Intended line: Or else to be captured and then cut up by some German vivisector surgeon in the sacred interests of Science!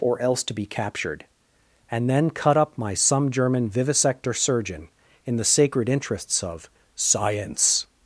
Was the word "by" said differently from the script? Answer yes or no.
yes